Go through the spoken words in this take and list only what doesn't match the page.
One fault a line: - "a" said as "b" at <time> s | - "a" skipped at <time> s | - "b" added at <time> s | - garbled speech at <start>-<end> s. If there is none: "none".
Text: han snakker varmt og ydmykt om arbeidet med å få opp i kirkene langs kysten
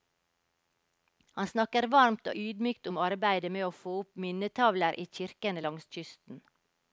- "minnetavler" added at 4.3 s